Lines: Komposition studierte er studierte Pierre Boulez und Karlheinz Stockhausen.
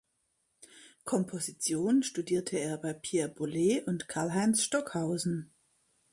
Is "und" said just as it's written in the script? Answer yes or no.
yes